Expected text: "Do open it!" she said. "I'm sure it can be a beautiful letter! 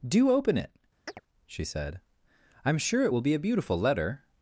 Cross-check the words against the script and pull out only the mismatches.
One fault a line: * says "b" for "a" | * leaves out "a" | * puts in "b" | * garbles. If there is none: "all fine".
* says "will" for "can"